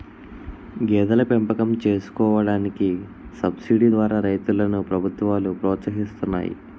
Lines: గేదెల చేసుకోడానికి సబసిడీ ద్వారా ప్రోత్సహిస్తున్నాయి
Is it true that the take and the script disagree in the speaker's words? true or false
true